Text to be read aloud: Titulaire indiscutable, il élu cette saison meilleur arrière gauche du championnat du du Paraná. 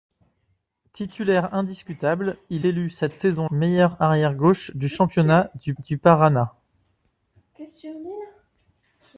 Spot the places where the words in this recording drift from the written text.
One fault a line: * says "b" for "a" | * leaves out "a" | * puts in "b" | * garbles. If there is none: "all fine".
all fine